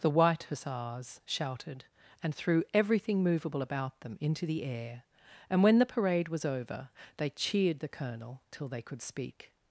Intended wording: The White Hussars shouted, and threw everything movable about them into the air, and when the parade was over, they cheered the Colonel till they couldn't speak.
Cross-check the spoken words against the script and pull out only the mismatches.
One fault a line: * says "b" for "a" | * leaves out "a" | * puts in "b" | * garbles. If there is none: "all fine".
* says "could" for "couldn't"